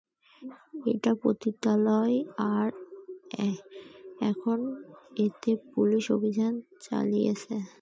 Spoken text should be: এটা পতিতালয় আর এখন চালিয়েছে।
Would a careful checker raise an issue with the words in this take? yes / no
yes